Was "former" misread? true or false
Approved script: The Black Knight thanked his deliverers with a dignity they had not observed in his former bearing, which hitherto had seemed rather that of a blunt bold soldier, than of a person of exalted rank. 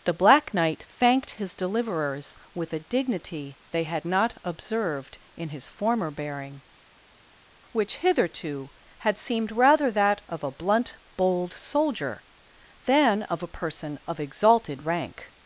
false